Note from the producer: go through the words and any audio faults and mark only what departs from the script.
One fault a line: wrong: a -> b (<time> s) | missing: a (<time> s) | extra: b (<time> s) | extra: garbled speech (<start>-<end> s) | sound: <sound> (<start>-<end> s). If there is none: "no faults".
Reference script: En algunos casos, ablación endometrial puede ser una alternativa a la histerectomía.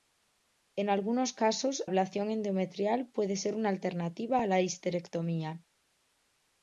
no faults